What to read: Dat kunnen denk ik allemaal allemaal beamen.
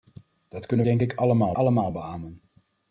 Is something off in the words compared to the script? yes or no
no